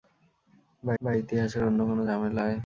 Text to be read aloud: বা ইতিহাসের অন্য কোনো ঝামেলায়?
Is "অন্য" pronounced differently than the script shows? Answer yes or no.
no